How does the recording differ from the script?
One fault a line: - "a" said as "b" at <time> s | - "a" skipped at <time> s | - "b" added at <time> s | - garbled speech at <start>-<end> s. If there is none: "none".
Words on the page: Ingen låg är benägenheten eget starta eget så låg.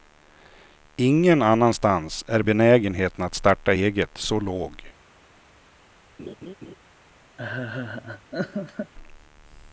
- "låg" said as "annanstans" at 1.4 s
- "eget" said as "att" at 3.2 s